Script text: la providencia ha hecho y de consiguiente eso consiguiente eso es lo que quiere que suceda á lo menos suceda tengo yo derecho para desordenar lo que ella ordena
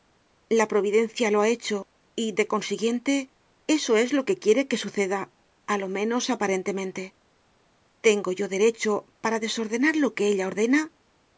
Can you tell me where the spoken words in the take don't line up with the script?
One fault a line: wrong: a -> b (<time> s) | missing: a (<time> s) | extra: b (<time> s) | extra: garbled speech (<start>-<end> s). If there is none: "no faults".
extra: lo (1.3 s)
missing: consiguiente eso (4.0 s)
wrong: suceda -> aparentemente (6.3 s)